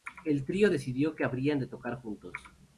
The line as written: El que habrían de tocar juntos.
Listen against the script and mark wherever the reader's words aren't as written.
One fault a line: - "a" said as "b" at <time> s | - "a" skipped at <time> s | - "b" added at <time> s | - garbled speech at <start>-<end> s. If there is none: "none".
- "trío decidió" added at 0.5 s